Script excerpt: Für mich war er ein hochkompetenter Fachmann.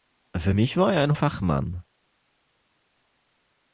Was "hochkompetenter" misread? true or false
true